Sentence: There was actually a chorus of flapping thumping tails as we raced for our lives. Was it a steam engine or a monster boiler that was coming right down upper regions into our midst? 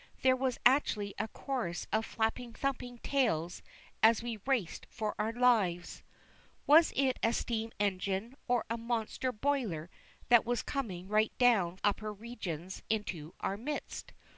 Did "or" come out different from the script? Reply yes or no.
no